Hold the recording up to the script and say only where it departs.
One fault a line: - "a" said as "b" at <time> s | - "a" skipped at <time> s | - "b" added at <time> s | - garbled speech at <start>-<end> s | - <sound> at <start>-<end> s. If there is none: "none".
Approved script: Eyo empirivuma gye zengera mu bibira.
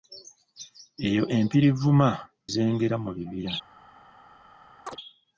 - "gye" skipped at 2.1 s
- chirp at 4.9-5.0 s